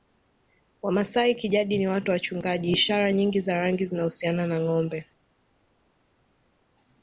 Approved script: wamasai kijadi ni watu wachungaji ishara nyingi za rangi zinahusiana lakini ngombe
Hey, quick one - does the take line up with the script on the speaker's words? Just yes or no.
no